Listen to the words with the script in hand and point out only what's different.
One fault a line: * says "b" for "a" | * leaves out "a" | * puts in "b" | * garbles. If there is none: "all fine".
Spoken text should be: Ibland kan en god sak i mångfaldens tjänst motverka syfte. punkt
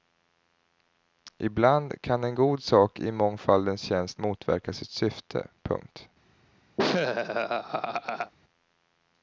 * puts in "sitt"